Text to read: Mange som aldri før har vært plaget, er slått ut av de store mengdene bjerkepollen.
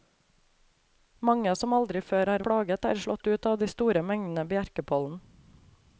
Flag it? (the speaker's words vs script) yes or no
yes